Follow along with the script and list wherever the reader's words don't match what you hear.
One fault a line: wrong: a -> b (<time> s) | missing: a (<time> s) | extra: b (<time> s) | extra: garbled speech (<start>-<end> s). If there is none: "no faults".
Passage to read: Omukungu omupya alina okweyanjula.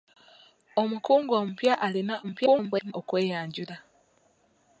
extra: garbled speech (2.2-2.9 s)